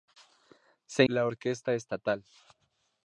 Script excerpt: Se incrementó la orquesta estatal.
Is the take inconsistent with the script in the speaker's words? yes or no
yes